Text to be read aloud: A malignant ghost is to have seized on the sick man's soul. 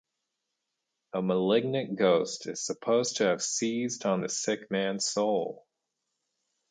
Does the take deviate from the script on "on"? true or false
false